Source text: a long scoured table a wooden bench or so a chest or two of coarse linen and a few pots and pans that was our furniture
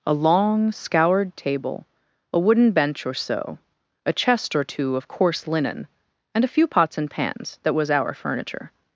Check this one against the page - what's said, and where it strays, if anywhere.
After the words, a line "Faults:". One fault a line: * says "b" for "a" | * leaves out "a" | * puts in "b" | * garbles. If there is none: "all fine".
a long scoured table a wooden bench or so a chest or two of coarse linen and a few pots and pans that was our furniture
Faults:
all fine